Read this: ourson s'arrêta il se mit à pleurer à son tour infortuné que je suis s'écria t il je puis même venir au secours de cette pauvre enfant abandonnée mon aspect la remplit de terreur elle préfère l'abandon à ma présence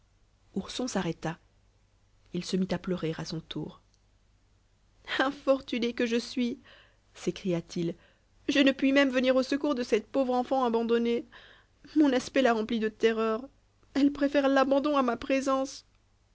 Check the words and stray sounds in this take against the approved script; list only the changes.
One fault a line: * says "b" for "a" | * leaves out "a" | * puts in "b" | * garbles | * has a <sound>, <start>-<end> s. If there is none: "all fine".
* puts in "ne"